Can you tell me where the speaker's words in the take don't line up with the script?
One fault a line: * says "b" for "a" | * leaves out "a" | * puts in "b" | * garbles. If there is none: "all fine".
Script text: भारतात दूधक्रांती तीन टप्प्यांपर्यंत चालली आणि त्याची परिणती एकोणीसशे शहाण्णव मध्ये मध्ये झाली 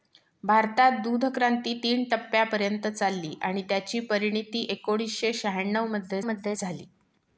all fine